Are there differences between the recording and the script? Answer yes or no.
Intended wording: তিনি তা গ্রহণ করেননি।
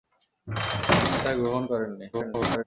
yes